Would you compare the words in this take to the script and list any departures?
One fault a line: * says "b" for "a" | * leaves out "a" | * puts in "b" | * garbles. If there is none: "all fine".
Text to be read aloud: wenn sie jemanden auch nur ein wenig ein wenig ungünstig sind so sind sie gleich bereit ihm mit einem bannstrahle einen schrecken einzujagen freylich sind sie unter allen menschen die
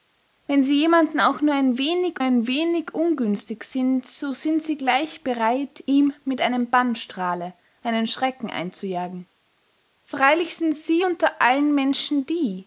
all fine